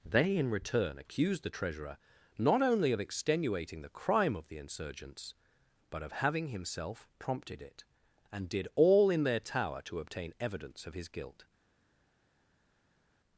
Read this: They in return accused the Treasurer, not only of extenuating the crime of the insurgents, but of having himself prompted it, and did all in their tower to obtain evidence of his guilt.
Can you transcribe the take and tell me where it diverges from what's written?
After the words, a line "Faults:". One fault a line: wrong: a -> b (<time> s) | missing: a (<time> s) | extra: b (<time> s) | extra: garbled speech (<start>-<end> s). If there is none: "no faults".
They in return accused the Treasurer, not only of extenuating the crime of the insurgents, but of having himself prompted it, and did all in their tower to obtain evidence of his guilt.
Faults:
no faults